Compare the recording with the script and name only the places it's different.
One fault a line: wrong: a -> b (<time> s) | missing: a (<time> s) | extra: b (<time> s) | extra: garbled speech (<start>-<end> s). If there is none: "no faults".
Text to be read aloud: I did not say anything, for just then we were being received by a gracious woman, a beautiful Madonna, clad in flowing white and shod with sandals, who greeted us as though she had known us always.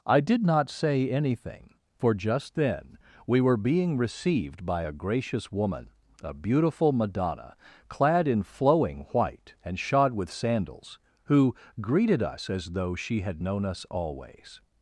no faults